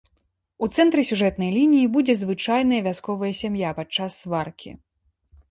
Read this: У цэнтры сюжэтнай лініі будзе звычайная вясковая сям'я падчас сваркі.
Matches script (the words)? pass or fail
pass